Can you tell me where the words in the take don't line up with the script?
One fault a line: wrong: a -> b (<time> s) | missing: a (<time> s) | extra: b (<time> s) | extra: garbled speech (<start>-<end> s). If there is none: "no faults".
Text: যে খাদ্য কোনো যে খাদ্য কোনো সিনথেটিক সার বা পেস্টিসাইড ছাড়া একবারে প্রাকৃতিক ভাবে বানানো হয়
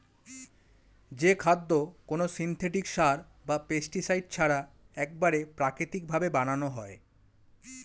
missing: যে খাদ্য কোনো (2.2 s)